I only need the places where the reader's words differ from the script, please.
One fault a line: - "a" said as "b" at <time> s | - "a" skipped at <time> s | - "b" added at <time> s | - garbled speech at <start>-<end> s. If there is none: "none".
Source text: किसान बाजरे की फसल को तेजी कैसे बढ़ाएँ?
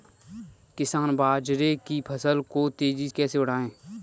none